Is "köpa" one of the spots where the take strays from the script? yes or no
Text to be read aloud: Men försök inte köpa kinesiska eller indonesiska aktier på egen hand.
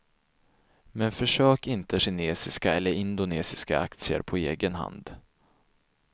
yes